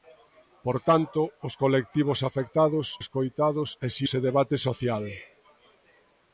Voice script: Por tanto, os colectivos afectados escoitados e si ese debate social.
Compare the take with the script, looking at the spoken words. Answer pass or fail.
pass